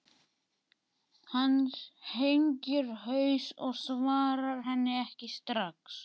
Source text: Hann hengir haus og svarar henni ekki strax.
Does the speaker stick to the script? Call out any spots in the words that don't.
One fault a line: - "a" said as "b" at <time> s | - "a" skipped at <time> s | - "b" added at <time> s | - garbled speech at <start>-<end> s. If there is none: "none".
none